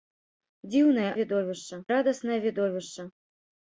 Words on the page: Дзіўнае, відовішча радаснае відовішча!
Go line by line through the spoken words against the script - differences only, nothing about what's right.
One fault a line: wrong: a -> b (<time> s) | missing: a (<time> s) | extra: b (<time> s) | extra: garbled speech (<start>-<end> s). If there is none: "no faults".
no faults